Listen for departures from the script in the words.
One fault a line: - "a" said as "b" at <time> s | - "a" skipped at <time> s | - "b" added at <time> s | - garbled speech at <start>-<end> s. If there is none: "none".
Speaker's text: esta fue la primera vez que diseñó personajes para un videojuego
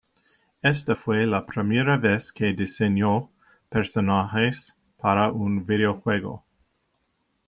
none